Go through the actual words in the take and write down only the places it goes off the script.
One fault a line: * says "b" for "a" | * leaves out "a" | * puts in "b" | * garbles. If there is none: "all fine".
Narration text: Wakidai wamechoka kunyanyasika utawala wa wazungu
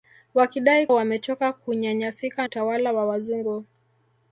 all fine